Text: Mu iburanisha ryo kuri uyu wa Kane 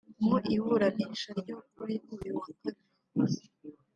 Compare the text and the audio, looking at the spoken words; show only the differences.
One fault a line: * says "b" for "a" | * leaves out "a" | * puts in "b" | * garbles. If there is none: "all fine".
all fine